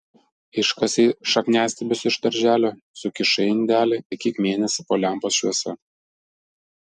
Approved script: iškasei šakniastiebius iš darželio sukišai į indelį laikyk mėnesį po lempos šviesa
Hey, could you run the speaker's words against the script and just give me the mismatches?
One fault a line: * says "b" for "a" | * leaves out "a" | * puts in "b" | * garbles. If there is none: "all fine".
all fine